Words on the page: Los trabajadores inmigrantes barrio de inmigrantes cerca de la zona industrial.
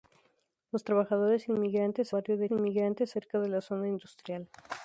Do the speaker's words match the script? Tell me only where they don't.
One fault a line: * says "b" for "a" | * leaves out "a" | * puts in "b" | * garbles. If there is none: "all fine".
all fine